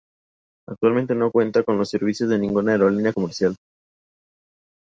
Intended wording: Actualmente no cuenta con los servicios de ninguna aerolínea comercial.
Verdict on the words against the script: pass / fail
pass